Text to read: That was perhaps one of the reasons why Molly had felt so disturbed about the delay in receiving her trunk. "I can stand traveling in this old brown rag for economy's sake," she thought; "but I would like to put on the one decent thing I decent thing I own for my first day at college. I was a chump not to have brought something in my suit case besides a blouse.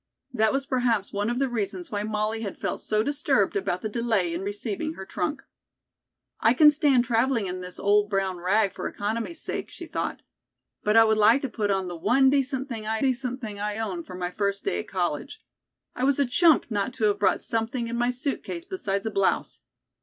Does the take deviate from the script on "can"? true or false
false